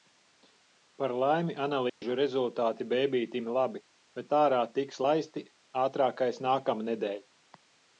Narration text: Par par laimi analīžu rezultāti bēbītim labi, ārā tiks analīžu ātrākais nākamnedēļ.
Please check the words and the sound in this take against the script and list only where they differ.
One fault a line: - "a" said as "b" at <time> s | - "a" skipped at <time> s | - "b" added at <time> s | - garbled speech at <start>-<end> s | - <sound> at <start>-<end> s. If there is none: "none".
- "par" skipped at 1.1 s
- dropout at 1.9-2.0 s
- "bet" added at 4.2 s
- "analīžu" said as "laisti" at 5.1 s